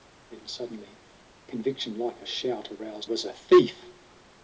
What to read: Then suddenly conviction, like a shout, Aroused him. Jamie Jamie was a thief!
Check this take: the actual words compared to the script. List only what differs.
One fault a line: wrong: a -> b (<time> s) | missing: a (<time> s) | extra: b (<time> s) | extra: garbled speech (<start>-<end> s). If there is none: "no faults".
missing: him Jamie Jamie (3.1 s)